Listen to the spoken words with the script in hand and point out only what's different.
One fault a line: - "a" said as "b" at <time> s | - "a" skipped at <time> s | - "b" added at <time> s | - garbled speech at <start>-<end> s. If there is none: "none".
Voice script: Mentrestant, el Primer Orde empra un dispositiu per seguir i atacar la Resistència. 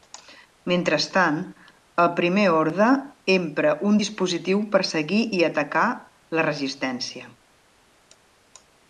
none